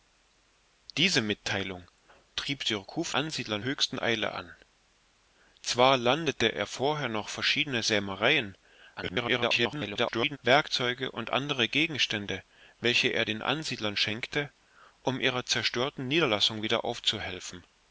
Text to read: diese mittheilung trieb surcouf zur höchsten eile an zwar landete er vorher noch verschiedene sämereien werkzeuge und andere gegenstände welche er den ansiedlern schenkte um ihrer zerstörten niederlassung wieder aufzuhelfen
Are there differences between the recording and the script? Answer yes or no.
yes